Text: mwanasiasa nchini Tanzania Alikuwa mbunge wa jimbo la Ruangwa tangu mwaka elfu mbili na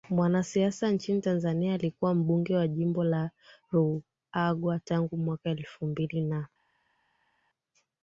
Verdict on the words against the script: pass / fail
pass